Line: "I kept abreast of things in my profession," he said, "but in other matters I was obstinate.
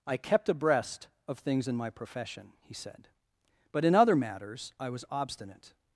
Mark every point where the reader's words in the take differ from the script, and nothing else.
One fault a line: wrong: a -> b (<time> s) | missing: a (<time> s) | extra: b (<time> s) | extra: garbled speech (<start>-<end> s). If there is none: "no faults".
no faults